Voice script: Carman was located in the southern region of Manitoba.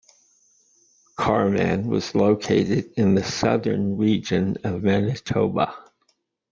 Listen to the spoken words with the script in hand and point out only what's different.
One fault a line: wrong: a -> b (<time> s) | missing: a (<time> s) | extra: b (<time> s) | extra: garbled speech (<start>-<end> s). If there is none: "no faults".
no faults